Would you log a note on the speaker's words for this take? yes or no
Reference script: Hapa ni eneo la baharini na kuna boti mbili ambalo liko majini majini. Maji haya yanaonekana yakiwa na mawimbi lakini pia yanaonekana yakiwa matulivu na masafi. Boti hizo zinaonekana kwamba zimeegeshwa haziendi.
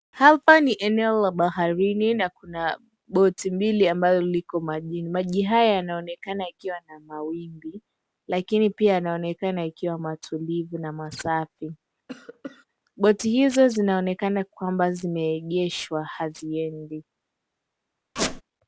yes